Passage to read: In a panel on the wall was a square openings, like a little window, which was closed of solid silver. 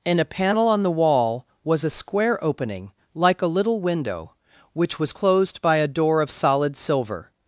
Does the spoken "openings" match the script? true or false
false